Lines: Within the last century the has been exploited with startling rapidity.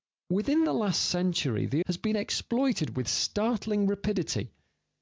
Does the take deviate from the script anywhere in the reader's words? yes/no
no